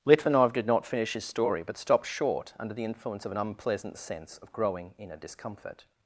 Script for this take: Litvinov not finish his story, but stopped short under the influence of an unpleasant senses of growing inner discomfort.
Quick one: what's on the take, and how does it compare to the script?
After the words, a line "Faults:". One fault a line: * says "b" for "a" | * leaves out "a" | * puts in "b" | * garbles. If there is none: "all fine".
Litvinov did not finish his story, but stopped short under the influence of an unpleasant sense of growing inner discomfort.
Faults:
* puts in "did"
* says "sense" for "senses"